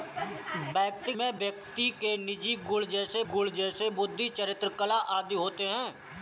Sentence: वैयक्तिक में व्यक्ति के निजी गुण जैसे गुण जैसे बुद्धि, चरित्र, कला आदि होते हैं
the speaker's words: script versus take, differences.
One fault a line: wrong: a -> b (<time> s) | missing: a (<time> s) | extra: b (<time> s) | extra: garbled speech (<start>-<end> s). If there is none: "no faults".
no faults